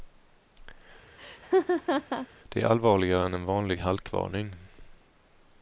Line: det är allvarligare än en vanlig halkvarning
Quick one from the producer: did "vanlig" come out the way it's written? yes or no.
yes